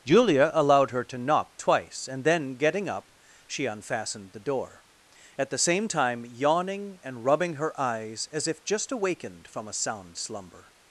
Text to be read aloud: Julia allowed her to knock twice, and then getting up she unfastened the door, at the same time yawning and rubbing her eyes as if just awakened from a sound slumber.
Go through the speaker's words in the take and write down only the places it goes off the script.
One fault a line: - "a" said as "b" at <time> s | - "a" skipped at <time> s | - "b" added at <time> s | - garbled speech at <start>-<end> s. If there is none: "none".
none